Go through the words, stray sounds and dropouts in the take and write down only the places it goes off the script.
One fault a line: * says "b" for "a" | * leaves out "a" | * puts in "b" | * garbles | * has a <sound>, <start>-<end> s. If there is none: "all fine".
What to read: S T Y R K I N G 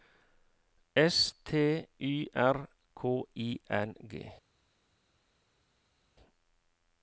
all fine